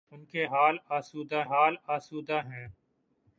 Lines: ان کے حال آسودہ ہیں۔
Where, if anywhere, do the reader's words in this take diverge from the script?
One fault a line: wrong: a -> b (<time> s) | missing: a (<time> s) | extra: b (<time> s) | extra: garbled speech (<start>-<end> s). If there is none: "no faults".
extra: حال آسودہ (1.4 s)